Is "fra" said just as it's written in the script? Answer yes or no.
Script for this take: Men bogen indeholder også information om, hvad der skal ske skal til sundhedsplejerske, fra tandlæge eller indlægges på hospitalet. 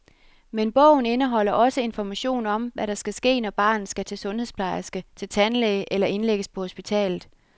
no